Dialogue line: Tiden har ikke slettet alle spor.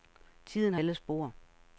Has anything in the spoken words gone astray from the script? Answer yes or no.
yes